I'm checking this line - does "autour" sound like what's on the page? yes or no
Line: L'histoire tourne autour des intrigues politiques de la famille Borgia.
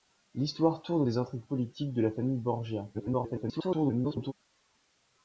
no